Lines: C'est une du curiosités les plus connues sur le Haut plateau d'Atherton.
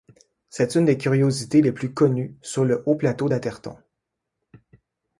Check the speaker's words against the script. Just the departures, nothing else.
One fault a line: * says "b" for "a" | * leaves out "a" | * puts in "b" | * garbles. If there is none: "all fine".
* says "des" for "du"